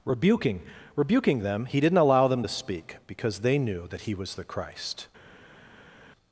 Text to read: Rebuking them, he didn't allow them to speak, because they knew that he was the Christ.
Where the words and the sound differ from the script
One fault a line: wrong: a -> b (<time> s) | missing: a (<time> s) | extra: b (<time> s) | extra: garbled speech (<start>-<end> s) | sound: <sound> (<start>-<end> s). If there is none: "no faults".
extra: rebuking (0.9 s)